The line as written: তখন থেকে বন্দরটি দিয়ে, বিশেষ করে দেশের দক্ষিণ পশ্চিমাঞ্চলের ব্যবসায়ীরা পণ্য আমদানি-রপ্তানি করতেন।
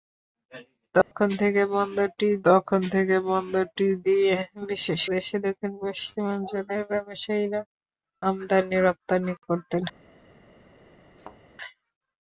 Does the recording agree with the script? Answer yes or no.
no